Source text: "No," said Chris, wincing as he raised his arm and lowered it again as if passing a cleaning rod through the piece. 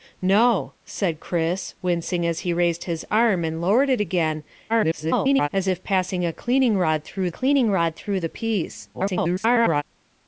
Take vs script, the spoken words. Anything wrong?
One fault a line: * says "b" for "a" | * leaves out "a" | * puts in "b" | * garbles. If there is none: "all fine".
* garbles
* puts in "cleaning rod through"
* garbles